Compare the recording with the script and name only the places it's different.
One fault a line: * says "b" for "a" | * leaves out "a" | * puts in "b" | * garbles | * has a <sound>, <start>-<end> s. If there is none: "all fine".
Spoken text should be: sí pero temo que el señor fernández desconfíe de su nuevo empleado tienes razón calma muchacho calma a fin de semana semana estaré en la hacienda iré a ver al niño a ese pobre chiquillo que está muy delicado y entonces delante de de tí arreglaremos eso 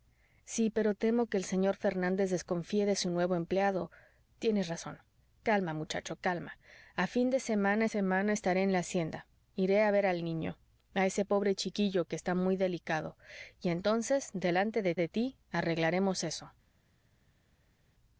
all fine